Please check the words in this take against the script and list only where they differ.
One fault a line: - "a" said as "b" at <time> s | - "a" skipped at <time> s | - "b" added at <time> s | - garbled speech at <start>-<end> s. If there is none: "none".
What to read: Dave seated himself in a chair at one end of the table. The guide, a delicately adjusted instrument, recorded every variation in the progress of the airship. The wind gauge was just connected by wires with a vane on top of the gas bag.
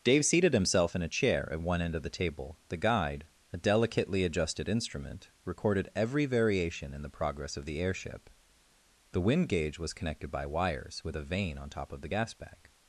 - "just" skipped at 9.9 s